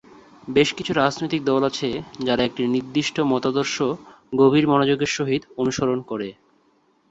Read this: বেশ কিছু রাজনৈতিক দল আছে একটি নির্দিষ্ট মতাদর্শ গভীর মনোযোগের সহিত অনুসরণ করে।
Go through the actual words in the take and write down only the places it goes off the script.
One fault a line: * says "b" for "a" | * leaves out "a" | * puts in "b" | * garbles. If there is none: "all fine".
* puts in "যারা"